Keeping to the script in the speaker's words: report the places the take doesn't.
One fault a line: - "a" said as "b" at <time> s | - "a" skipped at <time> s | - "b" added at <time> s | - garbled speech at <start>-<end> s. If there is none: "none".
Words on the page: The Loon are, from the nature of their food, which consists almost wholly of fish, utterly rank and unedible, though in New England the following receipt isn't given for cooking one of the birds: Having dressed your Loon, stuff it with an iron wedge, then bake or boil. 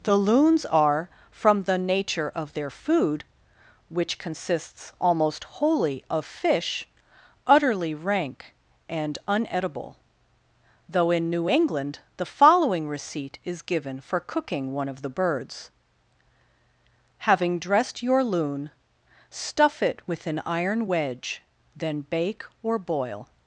- "Loon" said as "Loons" at 0.1 s
- "isn't" said as "is" at 13.4 s